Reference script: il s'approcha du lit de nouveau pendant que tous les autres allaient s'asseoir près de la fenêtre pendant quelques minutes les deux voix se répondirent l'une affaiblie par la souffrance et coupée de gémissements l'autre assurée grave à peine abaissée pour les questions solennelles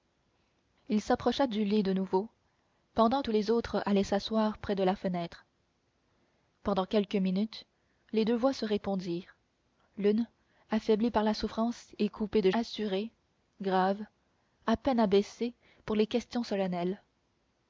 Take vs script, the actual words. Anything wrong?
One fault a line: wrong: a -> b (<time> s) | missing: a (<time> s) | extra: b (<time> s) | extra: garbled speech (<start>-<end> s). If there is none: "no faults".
missing: que (3.2 s)
missing: gémissements l'autre (12.5 s)